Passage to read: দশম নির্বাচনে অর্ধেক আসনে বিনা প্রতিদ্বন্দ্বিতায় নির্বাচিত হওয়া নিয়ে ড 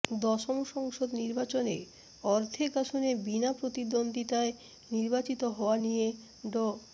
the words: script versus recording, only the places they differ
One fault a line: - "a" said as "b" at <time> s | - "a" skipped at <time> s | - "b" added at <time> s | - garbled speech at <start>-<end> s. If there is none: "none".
- "সংসদ" added at 0.7 s